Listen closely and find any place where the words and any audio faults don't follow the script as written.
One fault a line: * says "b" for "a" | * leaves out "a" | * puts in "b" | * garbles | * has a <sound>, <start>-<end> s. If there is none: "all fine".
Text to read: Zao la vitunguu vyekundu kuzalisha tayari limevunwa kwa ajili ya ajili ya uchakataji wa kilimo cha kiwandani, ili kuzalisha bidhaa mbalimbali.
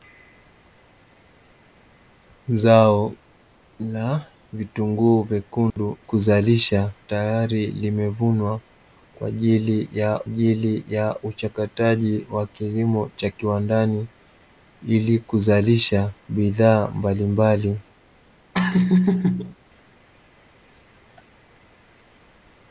* has a dropout, 5.7-5.8 s
* has a laugh, 18.5-19.5 s